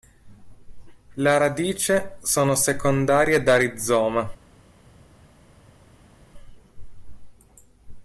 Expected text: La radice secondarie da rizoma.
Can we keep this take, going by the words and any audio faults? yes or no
no